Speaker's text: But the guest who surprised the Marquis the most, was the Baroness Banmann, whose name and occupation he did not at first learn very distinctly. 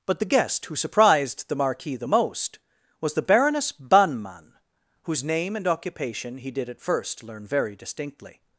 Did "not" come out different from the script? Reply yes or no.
yes